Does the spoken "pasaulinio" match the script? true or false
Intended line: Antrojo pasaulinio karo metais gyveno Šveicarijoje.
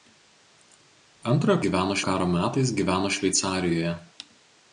false